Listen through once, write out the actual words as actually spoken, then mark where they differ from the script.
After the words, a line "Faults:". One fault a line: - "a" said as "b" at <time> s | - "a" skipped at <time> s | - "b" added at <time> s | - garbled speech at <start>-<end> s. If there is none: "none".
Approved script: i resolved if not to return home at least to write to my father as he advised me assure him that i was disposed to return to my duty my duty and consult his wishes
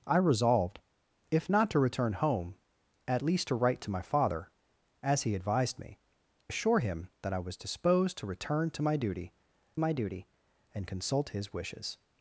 i resolved if not to return home at least to write to my father as he advised me assure him that i was disposed to return to my duty my duty and consult his wishes
Faults:
none